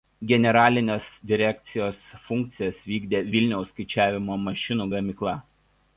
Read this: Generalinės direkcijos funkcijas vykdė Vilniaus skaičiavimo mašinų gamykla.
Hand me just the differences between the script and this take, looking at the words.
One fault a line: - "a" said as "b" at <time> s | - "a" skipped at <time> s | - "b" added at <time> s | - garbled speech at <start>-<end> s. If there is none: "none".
none